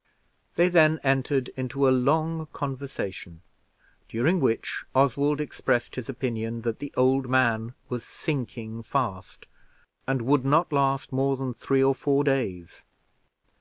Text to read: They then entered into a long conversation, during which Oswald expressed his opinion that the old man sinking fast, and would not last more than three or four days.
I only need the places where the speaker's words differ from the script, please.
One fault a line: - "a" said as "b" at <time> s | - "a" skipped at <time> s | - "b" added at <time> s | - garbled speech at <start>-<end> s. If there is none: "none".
- "was" added at 7.9 s